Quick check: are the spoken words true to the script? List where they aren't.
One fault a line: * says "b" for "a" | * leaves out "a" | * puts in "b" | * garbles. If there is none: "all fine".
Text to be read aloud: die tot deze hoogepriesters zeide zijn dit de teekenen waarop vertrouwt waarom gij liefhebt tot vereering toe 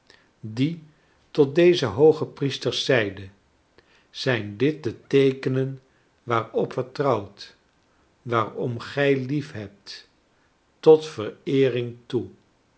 all fine